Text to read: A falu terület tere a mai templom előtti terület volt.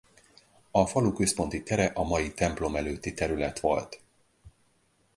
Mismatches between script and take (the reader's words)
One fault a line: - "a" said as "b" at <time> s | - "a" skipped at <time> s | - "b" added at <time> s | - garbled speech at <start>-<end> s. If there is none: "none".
- "terület" said as "központi" at 1.1 s